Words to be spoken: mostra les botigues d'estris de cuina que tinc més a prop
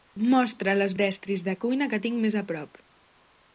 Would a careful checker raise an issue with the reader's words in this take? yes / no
yes